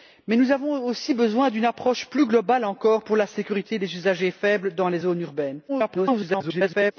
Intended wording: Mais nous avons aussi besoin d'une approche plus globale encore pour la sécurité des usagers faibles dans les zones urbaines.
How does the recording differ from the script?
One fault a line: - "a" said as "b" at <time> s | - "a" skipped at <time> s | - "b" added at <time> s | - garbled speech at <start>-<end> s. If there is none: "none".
- garbled speech at 5.7-6.9 s